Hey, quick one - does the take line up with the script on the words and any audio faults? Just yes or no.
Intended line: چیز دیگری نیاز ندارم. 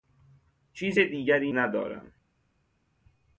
no